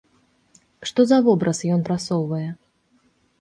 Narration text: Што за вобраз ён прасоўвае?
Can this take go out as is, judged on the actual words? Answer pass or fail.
pass